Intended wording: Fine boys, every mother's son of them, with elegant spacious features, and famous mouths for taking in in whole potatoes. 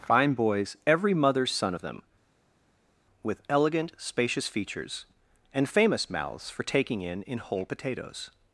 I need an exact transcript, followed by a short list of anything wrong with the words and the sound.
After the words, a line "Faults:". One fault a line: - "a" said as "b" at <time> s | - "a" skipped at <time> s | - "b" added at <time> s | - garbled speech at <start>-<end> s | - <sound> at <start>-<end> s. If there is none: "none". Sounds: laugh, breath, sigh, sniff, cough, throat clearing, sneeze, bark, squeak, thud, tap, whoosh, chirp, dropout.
Fine boys, every mother's son of them, with elegant spacious features, and famous mouths for taking in in whole potatoes.
Faults:
none